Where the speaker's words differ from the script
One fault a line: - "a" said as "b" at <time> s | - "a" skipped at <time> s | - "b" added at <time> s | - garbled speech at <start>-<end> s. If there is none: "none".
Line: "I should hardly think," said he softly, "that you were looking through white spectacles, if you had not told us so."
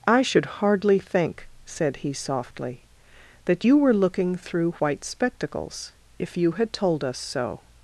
- "not" skipped at 6.7 s